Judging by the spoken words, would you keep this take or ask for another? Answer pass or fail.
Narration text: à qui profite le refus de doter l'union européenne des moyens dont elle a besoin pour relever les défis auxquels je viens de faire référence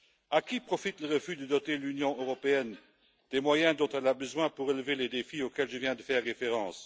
pass